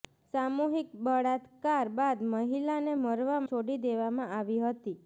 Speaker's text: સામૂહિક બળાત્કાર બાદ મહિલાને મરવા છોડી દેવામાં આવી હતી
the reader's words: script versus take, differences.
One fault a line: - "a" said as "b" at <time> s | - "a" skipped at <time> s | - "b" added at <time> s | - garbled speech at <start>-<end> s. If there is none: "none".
none